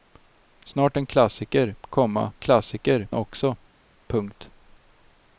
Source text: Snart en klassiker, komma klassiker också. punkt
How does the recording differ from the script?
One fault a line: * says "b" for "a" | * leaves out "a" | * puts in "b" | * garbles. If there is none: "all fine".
all fine